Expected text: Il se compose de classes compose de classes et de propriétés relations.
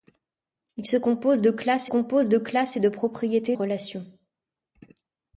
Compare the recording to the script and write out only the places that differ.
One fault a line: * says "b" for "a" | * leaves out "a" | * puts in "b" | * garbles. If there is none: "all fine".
all fine